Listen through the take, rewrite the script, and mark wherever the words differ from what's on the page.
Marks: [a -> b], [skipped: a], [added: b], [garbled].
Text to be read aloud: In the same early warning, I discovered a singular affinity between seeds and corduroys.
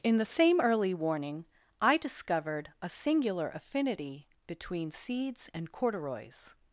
In the same early warning, I discovered a singular affinity between seeds and corduroys.